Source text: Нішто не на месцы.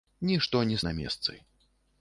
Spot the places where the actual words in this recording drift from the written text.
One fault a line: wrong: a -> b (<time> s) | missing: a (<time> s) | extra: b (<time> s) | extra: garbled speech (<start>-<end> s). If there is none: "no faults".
no faults